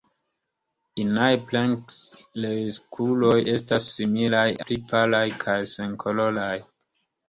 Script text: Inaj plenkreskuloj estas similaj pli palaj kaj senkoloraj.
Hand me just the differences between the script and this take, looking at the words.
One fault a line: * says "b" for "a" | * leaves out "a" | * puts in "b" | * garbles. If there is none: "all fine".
all fine